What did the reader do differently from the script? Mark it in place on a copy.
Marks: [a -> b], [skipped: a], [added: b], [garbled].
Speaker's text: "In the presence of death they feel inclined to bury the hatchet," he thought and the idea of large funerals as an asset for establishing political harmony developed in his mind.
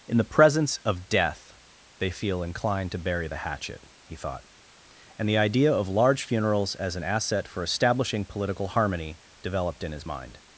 "In the presence of death they feel inclined to bury the hatchet," he thought and the idea of large funerals as an asset for establishing political harmony developed in his mind.